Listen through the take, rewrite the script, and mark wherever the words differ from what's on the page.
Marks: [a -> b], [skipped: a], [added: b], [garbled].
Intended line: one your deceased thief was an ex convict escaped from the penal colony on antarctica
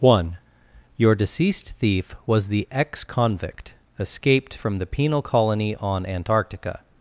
one your deceased thief was [an -> the] ex convict escaped from the penal colony on antarctica